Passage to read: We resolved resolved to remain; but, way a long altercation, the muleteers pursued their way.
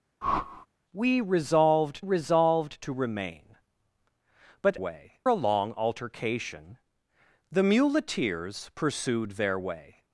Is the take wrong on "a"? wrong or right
right